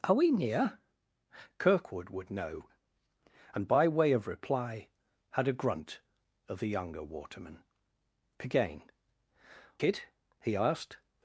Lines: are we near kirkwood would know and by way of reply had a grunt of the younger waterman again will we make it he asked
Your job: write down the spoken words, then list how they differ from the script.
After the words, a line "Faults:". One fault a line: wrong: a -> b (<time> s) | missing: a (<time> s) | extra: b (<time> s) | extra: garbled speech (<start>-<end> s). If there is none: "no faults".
are we near kirkwood would know and by way of reply had a grunt of the younger waterman again it he asked
Faults:
missing: will we make (8.8 s)